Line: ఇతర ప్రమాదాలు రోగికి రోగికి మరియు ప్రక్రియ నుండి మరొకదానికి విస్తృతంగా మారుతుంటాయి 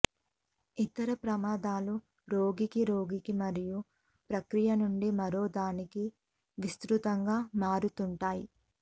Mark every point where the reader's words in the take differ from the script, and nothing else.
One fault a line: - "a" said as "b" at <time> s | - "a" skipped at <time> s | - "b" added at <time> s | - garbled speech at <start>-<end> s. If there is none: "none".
none